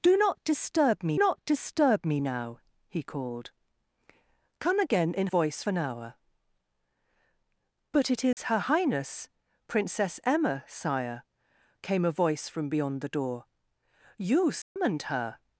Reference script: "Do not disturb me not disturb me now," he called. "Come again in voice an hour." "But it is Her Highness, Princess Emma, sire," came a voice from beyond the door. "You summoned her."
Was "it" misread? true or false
false